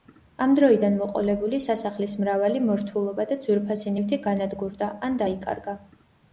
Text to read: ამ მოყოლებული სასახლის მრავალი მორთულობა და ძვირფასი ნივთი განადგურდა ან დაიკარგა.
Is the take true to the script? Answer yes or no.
no